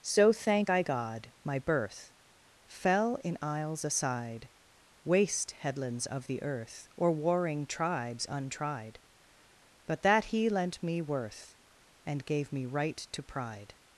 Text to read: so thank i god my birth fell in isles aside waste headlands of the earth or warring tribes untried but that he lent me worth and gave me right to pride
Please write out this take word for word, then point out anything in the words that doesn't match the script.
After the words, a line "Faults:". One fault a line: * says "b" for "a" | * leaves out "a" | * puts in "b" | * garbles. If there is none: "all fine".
so thank i god my birth fell in isles aside waste headlands of the earth or warring tribes untried but that he lent me worth and gave me right to pride
Faults:
all fine